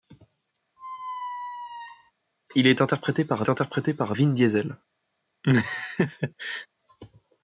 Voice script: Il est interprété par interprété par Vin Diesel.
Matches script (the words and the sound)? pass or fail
fail